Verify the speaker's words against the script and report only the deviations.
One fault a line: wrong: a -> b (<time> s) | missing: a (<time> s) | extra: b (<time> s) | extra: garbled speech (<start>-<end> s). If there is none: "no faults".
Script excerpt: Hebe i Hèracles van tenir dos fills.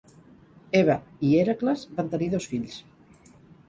no faults